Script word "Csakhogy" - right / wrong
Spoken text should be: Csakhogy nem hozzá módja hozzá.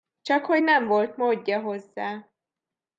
right